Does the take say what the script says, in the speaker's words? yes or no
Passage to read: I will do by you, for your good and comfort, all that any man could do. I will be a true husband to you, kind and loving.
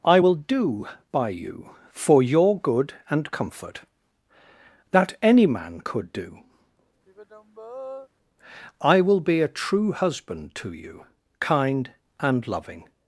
no